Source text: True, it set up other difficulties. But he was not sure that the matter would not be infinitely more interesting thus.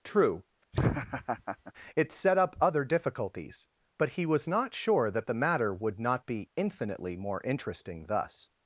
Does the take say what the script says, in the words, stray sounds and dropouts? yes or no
no